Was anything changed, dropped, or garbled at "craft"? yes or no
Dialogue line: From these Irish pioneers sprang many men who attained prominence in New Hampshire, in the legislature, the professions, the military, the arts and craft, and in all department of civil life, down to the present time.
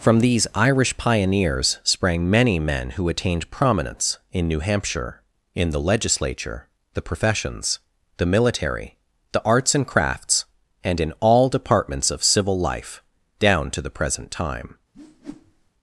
yes